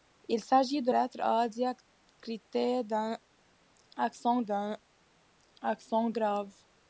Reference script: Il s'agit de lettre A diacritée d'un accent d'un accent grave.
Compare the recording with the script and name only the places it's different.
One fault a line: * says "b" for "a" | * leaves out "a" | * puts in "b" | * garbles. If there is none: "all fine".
all fine